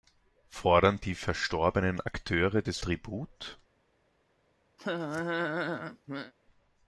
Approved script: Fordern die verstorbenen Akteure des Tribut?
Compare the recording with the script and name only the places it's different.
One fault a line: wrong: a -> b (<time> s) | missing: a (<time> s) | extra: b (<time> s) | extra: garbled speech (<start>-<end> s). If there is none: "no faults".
no faults